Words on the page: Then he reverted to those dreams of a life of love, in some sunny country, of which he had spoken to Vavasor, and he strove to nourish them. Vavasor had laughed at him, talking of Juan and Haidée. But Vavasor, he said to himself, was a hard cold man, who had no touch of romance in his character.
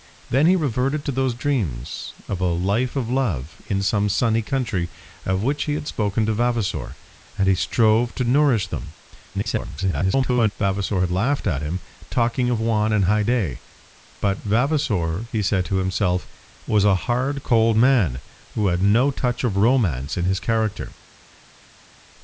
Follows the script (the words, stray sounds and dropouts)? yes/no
no